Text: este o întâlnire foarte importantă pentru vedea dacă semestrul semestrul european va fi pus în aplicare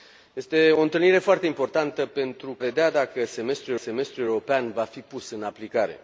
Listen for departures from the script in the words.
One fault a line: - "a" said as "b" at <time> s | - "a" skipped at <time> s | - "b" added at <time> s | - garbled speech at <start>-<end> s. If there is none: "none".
none